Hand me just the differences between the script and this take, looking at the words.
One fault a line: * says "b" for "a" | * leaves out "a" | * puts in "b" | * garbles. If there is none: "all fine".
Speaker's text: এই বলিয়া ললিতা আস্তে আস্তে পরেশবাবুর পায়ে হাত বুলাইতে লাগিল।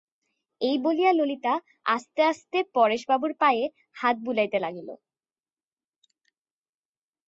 all fine